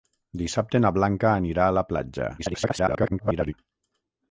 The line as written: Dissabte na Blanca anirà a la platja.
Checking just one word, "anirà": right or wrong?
right